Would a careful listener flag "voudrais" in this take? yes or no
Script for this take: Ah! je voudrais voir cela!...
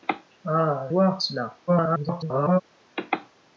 yes